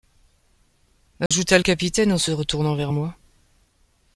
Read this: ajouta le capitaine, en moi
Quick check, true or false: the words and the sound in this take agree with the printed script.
false